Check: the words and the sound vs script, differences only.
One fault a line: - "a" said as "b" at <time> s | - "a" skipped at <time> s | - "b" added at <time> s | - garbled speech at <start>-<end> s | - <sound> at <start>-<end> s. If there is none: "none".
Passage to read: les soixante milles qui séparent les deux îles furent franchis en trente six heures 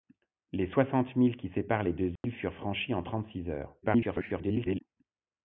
- dropout at 2.2-2.2 s
- garbled speech at 3.8-4.8 s